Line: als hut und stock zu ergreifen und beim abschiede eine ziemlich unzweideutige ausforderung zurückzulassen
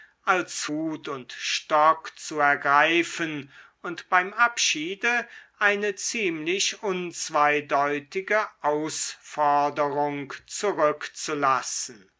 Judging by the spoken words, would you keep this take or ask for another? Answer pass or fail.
pass